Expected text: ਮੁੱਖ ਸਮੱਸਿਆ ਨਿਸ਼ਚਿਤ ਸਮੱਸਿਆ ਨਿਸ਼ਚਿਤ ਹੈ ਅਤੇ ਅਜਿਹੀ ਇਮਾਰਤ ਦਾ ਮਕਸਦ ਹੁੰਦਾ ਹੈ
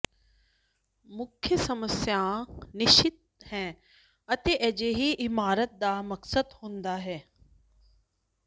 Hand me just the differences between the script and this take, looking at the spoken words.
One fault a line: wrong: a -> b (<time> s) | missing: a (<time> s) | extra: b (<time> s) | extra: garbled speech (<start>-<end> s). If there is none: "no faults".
missing: ਸਮੱਸਿਆ ਨਿਸ਼ਚਿਤ (3.5 s)